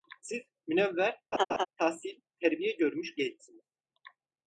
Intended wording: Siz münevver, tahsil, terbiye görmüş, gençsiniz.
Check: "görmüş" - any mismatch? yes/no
no